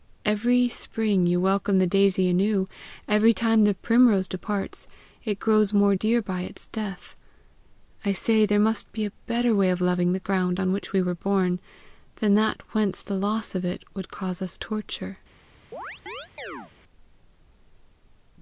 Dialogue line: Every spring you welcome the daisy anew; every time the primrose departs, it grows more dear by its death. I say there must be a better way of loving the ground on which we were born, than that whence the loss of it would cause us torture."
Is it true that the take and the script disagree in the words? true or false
false